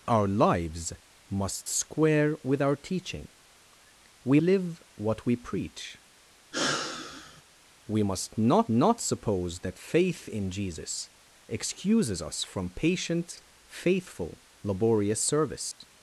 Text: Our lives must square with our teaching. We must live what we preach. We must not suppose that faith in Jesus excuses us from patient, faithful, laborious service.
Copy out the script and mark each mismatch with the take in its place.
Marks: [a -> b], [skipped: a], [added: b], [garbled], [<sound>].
Our lives must square with our teaching. We [skipped: must] live what we preach. [sigh] We must not [added: not] suppose that faith in Jesus excuses us from patient, faithful, laborious service. [dropout]